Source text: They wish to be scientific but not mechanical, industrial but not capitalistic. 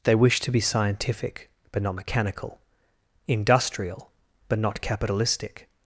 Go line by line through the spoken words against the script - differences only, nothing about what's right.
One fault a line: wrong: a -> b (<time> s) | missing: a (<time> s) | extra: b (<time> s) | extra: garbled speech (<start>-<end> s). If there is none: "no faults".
no faults